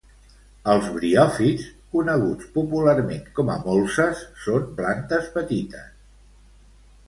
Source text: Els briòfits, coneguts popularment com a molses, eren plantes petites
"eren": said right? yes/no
no